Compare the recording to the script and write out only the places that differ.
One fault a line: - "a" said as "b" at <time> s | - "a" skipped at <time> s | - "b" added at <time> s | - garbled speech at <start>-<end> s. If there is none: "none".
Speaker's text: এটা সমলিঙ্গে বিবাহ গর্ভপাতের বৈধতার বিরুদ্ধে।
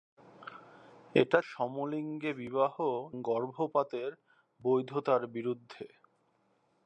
none